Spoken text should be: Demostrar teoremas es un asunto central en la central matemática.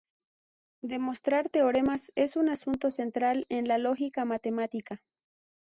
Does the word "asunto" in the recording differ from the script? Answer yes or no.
no